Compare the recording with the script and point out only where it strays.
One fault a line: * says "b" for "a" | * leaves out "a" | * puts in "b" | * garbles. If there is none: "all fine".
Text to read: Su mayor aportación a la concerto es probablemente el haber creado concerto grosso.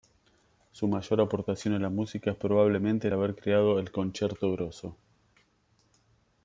* says "música" for "concerto"
* puts in "el"